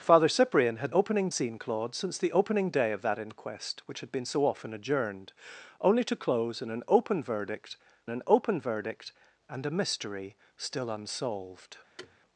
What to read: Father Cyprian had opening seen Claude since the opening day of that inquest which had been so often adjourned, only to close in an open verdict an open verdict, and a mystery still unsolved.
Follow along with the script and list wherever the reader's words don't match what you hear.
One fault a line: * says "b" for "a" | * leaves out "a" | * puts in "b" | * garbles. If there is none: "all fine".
all fine